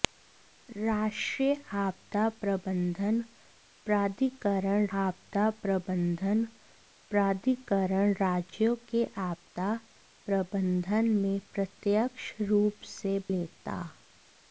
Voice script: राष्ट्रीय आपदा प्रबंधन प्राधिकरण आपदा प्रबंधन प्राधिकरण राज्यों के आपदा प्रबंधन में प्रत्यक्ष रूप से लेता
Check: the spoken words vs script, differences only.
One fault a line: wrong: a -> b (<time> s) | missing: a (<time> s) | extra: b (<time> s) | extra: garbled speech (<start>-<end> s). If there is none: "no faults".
no faults